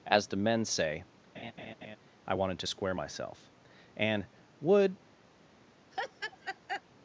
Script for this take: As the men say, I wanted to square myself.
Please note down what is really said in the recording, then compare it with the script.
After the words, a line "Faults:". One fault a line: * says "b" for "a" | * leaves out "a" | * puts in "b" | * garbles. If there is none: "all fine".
As the men say, I wanted to square myself. And, would
Faults:
* puts in "And would"